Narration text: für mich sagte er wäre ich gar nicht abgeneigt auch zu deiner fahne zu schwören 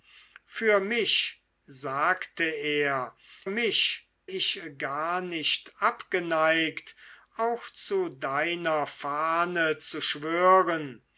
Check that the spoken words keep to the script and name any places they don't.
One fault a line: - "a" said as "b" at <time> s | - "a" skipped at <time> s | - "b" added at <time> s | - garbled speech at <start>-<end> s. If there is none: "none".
- "wäre" said as "mich" at 3.5 s